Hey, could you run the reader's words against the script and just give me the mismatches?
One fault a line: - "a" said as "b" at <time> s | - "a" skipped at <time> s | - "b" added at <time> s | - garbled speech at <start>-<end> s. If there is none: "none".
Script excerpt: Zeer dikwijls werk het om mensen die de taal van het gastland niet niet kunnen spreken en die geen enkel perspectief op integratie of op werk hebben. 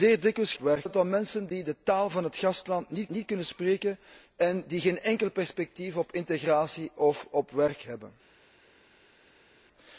none